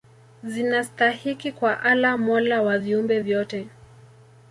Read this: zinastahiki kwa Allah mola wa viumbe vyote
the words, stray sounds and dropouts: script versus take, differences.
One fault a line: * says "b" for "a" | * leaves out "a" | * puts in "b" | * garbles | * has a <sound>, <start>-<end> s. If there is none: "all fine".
all fine